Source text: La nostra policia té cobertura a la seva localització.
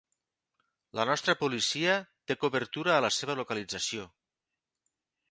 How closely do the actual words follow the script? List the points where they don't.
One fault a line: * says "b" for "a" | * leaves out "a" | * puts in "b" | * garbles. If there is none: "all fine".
all fine